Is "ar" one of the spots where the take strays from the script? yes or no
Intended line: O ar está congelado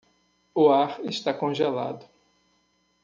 no